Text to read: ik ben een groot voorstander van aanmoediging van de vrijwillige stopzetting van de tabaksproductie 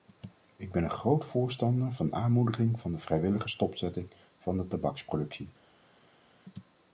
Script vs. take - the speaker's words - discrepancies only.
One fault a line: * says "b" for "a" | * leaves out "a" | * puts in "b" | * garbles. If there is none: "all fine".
all fine